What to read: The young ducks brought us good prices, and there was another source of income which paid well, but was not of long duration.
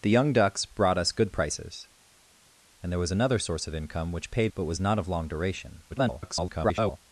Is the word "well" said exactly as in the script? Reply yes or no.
no